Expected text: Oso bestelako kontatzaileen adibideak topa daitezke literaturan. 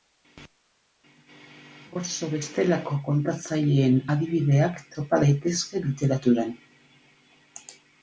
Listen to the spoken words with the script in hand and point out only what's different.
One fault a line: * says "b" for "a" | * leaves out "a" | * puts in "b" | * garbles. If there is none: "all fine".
all fine